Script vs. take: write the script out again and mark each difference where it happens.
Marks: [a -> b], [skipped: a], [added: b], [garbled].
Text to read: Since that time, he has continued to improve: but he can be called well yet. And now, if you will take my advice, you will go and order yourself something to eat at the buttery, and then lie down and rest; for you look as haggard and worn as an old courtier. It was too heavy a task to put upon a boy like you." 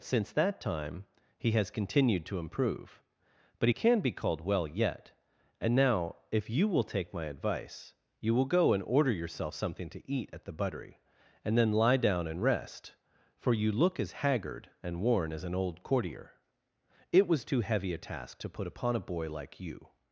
Since that time, he has continued to improve: but he can be called well yet. And now, if you will take my advice, you will go and order yourself something to eat at the buttery, and then lie down and rest; for you look as haggard and worn as an old courtier. It was too heavy a task to put upon a boy like you."